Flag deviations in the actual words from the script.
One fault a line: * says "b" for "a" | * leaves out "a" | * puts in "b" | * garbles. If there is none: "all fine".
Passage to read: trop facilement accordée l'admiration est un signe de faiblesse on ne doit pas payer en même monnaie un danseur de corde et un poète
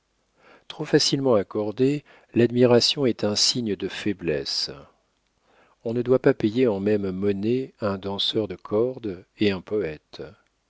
all fine